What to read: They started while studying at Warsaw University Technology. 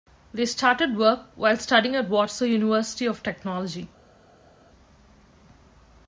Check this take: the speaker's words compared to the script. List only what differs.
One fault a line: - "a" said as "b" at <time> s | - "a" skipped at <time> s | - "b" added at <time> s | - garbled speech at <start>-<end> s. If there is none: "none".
- "work" added at 1.0 s
- "of" added at 3.0 s